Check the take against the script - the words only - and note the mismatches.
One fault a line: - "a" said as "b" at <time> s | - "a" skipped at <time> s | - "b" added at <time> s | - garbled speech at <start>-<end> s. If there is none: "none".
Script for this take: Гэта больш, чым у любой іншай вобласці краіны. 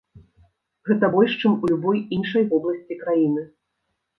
none